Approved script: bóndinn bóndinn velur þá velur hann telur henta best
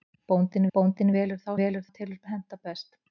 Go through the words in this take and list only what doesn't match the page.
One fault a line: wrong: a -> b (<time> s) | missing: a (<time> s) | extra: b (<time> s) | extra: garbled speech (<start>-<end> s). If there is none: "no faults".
no faults